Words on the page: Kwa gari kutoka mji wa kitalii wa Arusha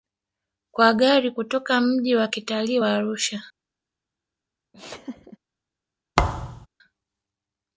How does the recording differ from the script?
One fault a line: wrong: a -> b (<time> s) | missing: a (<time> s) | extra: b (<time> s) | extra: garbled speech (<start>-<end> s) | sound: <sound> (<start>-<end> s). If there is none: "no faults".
sound: laugh (4.7-5.4 s)
sound: thud (6.2-6.7 s)